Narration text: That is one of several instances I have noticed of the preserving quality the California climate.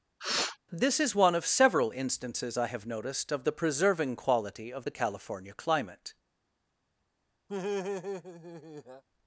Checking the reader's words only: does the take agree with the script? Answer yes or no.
no